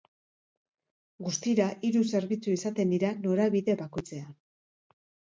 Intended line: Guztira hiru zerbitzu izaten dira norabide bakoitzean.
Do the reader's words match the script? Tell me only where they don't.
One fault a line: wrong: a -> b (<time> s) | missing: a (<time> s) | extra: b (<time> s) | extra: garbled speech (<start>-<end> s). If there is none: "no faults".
no faults